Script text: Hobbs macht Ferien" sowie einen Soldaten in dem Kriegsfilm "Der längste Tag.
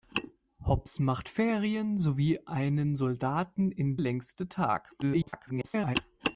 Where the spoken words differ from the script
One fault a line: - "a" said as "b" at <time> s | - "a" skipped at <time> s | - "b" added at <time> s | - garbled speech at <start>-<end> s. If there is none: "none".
- "dem Kriegsfilm Der" skipped at 4.0 s
- garbled speech at 5.0-6.0 s